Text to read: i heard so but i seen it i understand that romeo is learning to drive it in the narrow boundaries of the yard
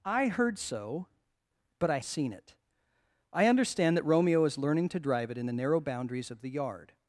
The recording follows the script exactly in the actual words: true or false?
true